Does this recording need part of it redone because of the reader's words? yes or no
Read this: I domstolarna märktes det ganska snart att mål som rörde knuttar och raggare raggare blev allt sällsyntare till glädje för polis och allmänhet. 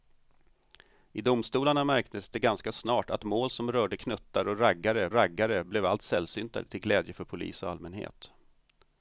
no